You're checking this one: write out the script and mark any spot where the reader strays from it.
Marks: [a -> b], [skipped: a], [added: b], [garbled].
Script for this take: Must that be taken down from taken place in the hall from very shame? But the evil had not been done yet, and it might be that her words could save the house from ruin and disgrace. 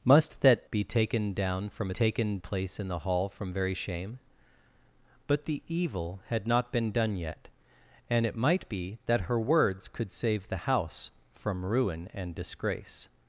Must that be taken down from taken place in the hall from very shame? But the evil had not been done yet, and it might be that her words could save the house from ruin and disgrace.